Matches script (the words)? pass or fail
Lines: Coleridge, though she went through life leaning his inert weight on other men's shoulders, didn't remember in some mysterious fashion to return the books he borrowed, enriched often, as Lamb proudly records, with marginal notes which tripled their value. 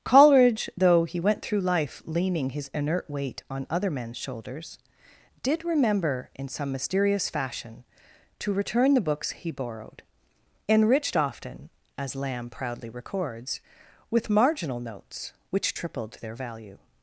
fail